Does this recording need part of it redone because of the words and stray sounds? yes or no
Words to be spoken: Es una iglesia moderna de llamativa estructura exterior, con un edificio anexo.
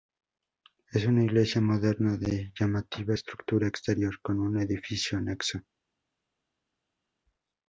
no